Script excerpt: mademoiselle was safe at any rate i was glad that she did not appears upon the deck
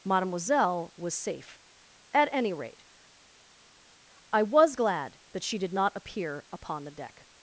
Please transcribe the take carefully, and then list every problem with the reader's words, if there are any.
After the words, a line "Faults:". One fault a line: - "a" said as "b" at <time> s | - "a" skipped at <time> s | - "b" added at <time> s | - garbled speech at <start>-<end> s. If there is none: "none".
mademoiselle was safe at any rate i was glad that she did not appear upon the deck
Faults:
- "appears" said as "appear" at 5.9 s